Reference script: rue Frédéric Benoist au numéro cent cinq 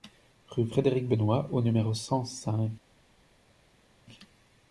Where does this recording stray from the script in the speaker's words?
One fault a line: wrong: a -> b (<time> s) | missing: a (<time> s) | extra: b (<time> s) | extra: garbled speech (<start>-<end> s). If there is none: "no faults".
no faults